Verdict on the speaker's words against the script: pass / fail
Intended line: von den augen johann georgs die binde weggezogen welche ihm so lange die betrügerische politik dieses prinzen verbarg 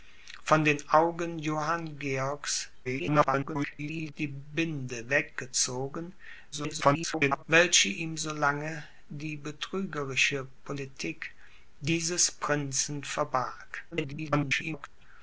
fail